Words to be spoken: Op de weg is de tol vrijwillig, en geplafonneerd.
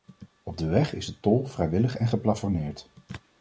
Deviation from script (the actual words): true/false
false